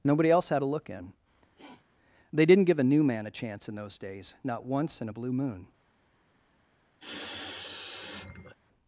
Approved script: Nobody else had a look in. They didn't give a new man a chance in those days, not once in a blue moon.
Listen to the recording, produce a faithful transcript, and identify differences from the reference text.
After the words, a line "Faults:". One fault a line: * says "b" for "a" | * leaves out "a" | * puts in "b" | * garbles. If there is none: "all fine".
Nobody else had a look in. They didn't give a new man a chance in those days, not once in a blue moon.
Faults:
all fine